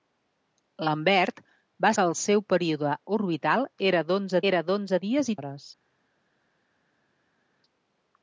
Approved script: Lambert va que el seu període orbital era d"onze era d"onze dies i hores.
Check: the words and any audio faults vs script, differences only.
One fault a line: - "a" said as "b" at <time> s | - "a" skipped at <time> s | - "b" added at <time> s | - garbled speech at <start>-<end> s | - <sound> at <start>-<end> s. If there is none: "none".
none